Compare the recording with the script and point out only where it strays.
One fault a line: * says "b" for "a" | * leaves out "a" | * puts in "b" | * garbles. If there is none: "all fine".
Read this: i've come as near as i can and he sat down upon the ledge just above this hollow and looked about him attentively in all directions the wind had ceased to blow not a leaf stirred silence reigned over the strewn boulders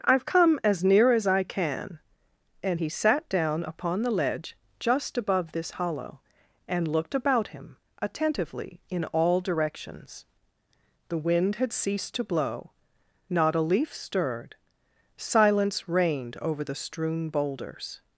all fine